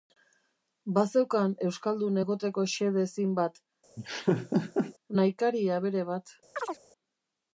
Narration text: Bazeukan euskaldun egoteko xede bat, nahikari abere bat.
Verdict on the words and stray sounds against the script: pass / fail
fail